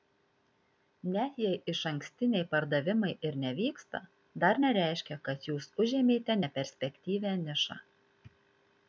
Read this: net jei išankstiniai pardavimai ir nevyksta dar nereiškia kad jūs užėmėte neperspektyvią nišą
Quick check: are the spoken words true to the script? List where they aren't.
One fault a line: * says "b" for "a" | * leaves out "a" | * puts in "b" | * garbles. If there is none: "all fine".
all fine